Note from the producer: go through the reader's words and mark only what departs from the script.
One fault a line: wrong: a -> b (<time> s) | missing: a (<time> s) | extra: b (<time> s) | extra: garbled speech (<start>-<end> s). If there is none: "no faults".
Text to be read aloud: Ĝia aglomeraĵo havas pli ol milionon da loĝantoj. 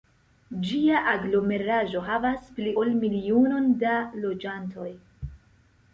no faults